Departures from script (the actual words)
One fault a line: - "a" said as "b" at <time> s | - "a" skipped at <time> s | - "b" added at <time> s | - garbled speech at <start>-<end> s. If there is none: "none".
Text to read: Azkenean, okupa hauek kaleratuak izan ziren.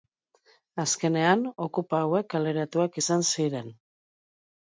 none